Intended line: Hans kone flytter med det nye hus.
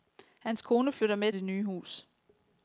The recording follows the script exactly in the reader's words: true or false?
true